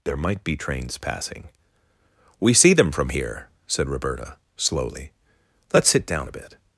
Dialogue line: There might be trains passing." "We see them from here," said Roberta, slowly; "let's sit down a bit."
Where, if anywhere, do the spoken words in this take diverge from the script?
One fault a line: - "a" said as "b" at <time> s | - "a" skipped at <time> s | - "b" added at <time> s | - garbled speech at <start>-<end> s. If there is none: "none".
none